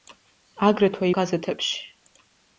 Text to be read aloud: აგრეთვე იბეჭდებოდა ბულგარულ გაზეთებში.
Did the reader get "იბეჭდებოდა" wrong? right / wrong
wrong